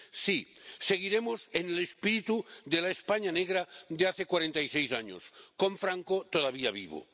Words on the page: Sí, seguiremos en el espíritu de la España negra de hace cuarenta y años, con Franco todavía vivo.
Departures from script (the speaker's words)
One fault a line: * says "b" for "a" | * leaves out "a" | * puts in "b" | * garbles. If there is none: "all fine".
* puts in "seis"